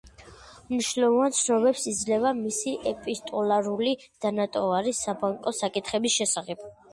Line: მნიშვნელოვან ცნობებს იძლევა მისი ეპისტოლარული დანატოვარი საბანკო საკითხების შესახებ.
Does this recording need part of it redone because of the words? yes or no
no